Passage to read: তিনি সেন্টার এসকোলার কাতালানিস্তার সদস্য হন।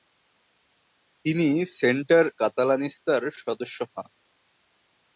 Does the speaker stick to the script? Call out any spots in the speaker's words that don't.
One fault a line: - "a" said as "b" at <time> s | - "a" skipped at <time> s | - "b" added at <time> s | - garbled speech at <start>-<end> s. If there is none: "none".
- "এসকোলার" skipped at 2.2 s